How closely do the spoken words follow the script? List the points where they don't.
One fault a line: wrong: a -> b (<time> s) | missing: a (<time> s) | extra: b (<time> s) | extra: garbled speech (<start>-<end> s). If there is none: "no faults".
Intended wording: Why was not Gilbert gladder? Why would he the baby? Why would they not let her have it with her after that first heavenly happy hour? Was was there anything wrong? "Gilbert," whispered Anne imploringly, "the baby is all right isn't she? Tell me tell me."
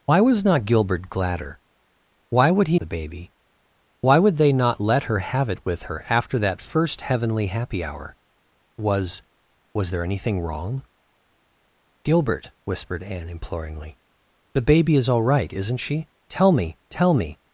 no faults